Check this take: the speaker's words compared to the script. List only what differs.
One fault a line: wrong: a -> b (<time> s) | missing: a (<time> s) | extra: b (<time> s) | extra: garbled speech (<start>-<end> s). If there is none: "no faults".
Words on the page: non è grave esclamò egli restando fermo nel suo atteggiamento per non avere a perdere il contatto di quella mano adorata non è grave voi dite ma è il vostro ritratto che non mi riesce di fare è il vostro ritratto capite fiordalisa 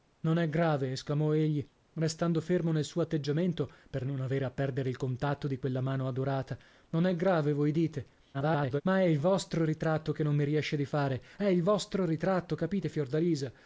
extra: garbled speech (8.3-8.8 s)